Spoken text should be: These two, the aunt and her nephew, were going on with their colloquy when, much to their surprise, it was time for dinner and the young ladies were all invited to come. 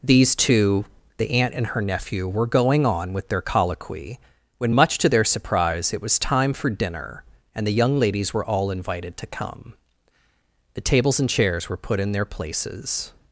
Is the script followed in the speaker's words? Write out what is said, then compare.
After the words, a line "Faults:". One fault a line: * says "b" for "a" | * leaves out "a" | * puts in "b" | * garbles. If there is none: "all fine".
These two, the aunt and her nephew, were going on with their colloquy when, much to their surprise, it was time for dinner and the young ladies were all invited to come. The tables and chairs were put in their places
Faults:
* puts in "The tables and chairs were put in their places"